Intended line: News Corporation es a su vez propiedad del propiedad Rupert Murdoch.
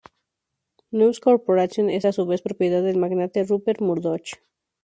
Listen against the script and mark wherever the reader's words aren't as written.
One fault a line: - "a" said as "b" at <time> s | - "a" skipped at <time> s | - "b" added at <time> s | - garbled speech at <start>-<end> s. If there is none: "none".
- "propiedad" said as "magnate" at 3.0 s